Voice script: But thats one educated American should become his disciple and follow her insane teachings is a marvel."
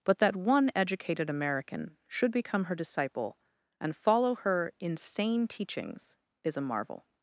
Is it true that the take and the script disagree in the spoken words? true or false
true